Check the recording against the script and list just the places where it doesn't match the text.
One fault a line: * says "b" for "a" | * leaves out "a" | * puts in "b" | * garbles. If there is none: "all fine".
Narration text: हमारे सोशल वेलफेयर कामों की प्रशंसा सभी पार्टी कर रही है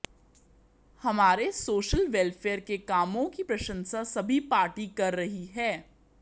* puts in "के"